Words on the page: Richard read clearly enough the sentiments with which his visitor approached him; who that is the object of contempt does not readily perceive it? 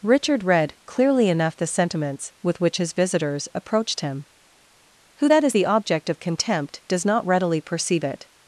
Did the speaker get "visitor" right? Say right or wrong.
wrong